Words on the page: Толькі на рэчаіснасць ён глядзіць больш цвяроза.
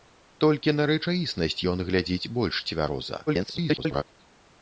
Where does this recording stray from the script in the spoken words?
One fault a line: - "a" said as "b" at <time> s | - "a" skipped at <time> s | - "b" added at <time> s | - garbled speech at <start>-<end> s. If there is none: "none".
- garbled speech at 3.3-4.0 s